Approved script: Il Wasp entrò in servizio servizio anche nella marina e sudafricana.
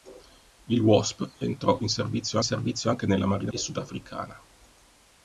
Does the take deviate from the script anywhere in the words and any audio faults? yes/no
no